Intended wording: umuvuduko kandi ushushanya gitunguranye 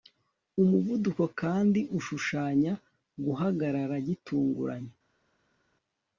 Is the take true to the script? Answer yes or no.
no